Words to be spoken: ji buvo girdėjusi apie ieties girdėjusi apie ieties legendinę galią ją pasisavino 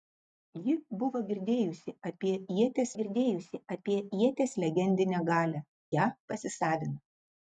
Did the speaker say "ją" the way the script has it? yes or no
yes